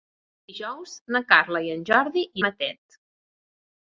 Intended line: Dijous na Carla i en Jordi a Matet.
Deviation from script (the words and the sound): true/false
false